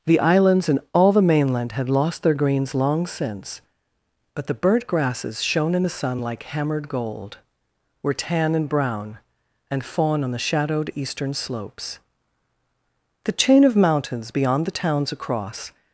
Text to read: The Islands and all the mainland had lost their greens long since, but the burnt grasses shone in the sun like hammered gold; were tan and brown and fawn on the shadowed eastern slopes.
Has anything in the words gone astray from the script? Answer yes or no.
yes